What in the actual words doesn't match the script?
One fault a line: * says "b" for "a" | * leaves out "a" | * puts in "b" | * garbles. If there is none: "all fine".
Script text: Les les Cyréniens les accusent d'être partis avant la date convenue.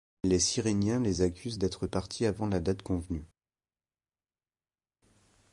* leaves out "les"